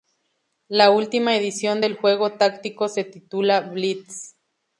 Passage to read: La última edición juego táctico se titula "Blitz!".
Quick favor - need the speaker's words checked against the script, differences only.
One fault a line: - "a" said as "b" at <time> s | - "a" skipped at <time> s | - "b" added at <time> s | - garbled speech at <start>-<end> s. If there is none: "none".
- "del" added at 1.8 s